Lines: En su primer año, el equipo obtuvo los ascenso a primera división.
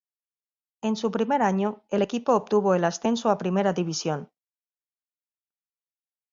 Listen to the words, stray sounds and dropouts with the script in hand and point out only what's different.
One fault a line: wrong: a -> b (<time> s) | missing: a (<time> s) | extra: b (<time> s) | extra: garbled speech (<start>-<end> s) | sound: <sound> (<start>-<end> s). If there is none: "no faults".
wrong: los -> el (2.7 s)